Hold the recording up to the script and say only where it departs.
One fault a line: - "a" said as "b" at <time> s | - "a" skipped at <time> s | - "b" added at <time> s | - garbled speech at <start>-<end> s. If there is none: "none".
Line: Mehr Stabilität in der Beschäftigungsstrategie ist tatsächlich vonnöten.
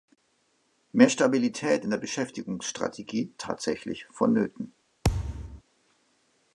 - "ist" skipped at 3.3 s